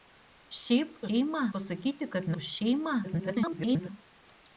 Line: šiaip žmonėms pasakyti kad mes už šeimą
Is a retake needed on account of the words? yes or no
yes